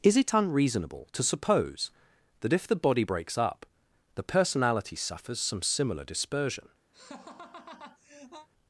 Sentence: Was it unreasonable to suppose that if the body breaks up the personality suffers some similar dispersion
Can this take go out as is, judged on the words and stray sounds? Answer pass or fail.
fail